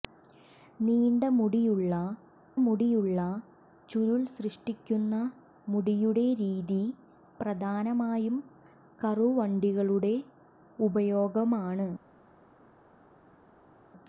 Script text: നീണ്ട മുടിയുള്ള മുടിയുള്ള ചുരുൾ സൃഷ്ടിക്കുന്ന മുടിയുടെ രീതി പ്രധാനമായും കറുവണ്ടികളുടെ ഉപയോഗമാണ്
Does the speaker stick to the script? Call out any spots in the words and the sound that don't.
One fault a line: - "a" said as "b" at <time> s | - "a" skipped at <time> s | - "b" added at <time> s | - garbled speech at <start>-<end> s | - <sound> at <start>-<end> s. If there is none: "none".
none